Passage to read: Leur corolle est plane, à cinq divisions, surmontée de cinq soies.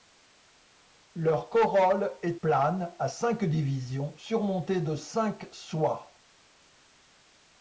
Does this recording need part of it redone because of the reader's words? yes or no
no